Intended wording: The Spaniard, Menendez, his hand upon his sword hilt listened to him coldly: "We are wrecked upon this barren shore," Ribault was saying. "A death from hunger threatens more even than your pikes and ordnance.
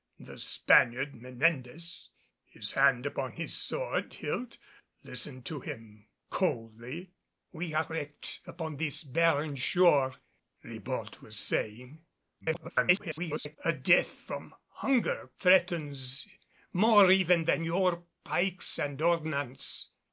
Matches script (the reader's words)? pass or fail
fail